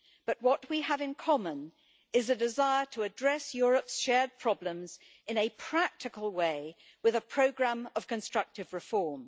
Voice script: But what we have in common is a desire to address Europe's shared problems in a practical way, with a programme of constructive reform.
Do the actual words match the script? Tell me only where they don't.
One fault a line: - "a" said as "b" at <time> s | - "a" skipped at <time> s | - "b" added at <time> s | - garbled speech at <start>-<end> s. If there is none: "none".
none